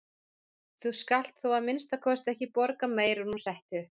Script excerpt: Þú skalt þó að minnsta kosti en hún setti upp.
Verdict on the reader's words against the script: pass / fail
fail